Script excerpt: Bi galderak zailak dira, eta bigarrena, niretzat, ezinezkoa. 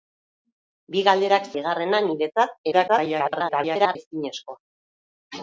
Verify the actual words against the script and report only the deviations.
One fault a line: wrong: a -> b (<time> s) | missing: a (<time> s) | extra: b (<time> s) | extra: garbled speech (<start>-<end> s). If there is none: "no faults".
missing: zailak dira eta (1.5 s)
extra: garbled speech (2.7-4.0 s)